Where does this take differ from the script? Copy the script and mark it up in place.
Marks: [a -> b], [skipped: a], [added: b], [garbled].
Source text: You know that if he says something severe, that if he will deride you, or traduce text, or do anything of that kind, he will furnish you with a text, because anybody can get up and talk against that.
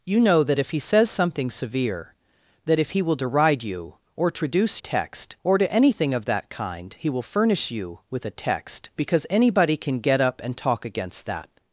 You know that if he says something severe, that if he will deride you, or traduce text, or do anything of that kind, he will furnish you with a text, because anybody can get up and talk against that.